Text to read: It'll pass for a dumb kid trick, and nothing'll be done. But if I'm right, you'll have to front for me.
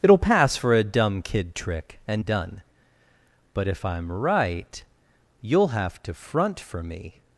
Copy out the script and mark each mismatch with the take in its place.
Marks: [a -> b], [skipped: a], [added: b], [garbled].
It'll pass for a dumb kid trick, and [skipped: nothing'll be] done. But if I'm right, you'll have to front for me.